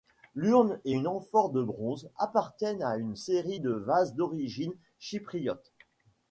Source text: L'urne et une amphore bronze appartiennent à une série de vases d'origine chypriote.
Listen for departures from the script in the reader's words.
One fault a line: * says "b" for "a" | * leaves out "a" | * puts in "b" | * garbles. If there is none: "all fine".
* puts in "de"